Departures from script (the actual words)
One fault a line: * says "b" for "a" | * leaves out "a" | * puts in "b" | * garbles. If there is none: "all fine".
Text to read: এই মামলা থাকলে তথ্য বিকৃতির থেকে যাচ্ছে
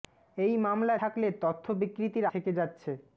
all fine